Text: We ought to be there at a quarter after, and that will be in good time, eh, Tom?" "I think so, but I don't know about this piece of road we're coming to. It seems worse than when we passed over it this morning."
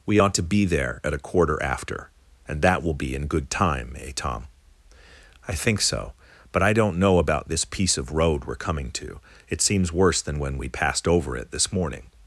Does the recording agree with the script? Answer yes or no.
yes